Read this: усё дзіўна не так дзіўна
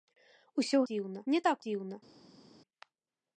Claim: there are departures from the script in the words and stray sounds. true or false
false